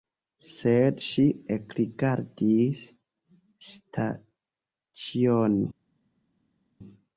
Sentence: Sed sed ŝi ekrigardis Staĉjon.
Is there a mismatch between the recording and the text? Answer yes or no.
yes